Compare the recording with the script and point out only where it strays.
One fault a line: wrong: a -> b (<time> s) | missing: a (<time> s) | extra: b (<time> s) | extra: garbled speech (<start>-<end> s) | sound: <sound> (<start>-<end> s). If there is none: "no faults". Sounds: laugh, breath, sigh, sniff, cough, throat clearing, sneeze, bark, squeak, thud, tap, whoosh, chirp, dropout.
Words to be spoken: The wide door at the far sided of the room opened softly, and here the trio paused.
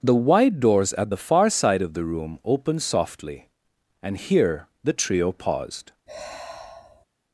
wrong: door -> doors (0.6 s)
wrong: sided -> side (1.5 s)
sound: sigh (6.1-7.1 s)